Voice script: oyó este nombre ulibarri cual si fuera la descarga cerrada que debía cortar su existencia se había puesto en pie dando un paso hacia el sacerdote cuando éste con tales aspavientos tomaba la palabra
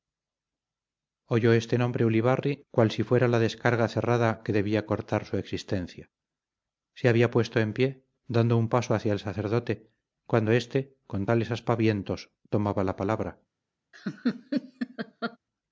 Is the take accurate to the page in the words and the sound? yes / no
no